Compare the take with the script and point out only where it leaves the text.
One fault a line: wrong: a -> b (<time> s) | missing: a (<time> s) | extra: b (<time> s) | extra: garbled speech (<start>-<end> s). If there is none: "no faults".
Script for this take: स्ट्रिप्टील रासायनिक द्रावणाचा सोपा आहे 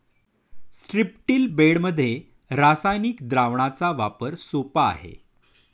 extra: बेडमध्ये (1.5 s)
extra: वापर (3.9 s)